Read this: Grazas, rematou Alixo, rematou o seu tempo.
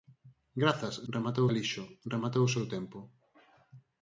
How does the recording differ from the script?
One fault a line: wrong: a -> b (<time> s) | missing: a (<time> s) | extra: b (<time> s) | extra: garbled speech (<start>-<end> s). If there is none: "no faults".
no faults